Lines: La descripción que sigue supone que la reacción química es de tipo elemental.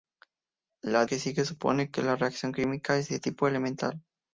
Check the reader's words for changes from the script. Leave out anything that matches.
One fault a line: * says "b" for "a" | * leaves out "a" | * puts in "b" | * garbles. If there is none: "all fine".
* leaves out "descripción"